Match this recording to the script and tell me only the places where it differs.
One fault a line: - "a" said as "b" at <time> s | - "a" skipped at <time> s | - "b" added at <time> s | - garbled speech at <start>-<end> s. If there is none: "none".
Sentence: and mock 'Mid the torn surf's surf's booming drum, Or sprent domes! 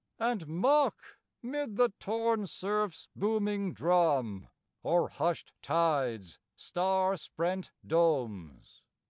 - "surf's" skipped at 3.1 s
- "hushed tide's star" added at 5.1 s